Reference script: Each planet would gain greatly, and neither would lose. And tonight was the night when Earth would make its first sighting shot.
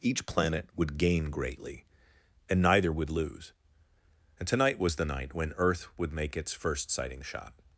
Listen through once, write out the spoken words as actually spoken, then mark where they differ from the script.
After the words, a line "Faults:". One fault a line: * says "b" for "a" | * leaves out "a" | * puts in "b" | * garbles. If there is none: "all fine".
Each planet would gain greatly, and neither would lose. And tonight was the night when Earth would make its first sighting shot.
Faults:
all fine